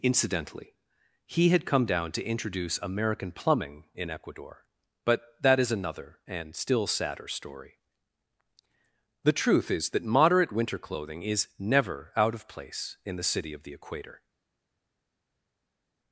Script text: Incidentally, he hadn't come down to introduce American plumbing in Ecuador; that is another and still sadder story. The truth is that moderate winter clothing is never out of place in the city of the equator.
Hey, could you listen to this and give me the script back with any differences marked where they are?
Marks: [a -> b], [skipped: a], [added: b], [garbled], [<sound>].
Incidentally, he [hadn't -> had] come down to introduce American plumbing in Ecuador; [added: but] that is another and still sadder story. The truth is that moderate winter clothing is never out of place in the city of the equator.